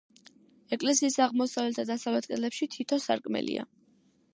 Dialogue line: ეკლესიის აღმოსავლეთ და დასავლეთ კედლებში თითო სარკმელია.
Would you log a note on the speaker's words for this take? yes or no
no